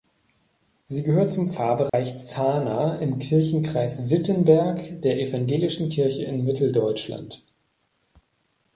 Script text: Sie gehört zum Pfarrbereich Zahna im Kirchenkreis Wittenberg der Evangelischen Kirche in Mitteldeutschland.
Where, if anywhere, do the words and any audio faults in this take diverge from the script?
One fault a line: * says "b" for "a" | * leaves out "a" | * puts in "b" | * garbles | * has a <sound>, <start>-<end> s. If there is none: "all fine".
* has a dropout, 1.9-1.9 s